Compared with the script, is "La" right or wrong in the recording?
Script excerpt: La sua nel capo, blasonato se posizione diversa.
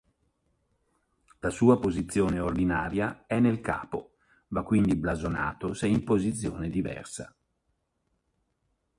right